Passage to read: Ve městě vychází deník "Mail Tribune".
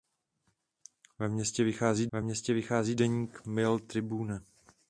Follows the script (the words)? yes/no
no